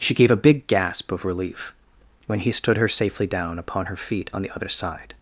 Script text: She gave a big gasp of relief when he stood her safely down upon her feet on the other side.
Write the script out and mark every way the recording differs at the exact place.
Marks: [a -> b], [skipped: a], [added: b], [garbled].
She gave a big gasp of relief when he stood her safely down upon her feet on the other side.